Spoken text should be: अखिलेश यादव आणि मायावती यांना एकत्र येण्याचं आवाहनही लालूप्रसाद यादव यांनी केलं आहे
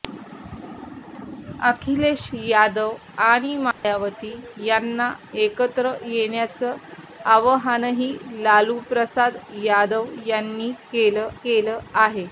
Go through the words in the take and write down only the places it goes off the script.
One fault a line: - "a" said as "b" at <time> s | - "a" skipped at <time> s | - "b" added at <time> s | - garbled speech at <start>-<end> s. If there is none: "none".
- "केलं" added at 11.4 s